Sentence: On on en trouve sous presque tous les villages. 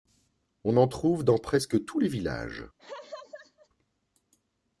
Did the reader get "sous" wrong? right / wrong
wrong